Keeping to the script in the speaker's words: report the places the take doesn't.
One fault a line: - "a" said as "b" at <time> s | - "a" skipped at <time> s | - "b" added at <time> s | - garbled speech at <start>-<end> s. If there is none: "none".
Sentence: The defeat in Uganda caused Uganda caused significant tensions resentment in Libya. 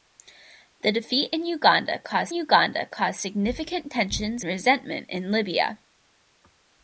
none